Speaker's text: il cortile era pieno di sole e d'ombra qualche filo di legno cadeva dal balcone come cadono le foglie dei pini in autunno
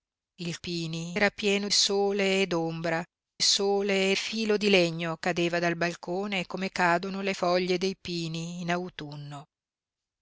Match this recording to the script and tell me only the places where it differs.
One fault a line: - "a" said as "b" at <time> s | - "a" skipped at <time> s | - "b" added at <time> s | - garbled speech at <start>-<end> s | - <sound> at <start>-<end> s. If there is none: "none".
- "cortile" said as "pini" at 0.6 s
- "di" skipped at 1.7 s
- "qualche" said as "sole" at 3.4 s